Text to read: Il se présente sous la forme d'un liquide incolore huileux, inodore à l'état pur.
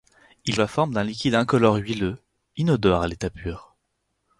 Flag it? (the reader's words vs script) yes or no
yes